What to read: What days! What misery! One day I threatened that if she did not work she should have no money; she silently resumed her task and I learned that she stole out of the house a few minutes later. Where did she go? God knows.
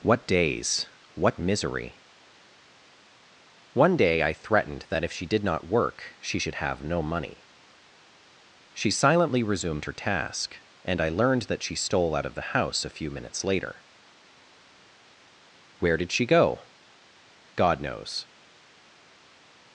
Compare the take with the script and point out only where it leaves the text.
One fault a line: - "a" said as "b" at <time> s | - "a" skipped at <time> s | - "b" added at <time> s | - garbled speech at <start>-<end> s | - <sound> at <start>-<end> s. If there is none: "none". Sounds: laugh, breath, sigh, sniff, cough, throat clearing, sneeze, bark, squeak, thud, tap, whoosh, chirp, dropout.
none